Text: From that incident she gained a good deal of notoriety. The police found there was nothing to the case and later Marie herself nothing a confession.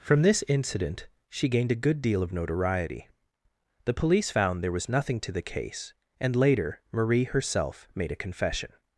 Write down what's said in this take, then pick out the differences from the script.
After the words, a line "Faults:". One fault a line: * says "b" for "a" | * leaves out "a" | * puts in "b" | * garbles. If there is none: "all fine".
From this incident she gained a good deal of notoriety. The police found there was nothing to the case and later Marie herself made a confession.
Faults:
* says "this" for "that"
* says "made" for "nothing"